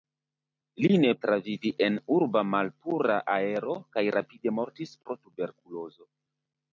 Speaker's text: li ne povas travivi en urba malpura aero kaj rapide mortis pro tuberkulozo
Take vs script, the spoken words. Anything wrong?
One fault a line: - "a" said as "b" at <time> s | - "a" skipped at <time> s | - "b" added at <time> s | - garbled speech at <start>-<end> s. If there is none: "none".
- "povas" skipped at 1.1 s